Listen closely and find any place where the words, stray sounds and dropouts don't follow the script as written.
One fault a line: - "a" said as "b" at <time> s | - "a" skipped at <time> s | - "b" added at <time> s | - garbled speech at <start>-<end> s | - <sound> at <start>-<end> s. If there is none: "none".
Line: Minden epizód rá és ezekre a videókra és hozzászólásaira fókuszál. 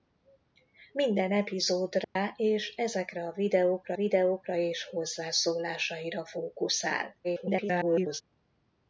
- dropout at 2.0-2.2 s
- "videókra" added at 3.9 s
- garbled speech at 7.2-8.2 s